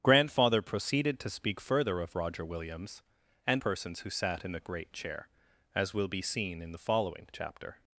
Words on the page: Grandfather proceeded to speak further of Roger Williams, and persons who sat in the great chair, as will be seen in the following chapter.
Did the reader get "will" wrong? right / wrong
right